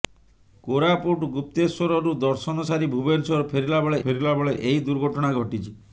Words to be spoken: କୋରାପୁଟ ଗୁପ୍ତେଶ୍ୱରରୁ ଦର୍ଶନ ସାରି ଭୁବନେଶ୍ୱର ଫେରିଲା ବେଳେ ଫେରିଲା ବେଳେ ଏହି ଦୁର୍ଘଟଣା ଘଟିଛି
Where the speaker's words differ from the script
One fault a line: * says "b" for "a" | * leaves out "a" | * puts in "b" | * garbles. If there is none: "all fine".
all fine